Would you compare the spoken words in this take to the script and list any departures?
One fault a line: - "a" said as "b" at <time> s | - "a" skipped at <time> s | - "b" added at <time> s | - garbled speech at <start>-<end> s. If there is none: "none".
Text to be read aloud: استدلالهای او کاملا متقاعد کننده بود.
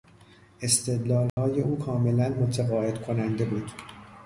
none